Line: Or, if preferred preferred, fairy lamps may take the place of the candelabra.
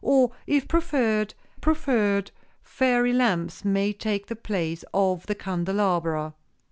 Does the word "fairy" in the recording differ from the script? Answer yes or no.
no